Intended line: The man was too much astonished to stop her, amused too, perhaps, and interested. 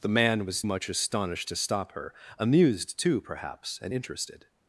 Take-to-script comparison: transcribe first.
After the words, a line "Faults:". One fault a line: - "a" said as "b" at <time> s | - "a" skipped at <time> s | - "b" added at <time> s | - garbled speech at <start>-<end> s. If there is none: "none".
The man was much astonished to stop her, amused too, perhaps, and interested.
Faults:
- "too" skipped at 0.6 s